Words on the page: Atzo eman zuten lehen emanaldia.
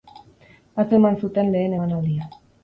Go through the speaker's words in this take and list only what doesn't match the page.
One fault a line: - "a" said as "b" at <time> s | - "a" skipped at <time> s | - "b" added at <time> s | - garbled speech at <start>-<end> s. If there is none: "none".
none